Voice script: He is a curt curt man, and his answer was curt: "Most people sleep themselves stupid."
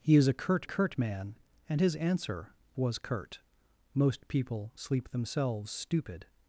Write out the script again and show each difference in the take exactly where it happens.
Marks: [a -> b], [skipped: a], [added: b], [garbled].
He is a curt curt man, and his answer was curt: "Most people sleep themselves stupid."